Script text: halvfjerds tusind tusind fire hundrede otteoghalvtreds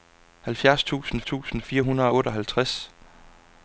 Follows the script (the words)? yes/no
yes